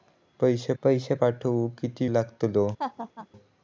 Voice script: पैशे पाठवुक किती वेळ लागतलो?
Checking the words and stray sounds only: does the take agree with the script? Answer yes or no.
no